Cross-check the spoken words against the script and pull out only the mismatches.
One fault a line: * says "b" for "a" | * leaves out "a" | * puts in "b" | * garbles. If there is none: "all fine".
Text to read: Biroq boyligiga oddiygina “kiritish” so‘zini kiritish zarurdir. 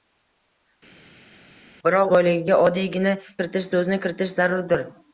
all fine